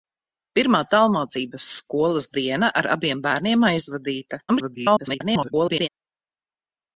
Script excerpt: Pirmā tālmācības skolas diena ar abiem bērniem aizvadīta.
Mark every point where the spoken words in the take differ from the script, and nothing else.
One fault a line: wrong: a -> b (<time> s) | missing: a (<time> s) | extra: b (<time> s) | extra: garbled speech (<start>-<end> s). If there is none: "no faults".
extra: garbled speech (4.5-5.9 s)